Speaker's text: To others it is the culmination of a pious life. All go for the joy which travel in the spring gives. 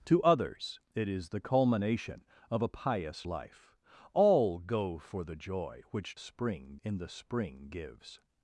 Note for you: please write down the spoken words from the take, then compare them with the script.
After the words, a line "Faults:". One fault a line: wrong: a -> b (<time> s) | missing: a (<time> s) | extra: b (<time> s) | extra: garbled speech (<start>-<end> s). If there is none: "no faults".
To others it is the culmination of a pious life. All go for the joy which spring in the spring gives.
Faults:
wrong: travel -> spring (6.2 s)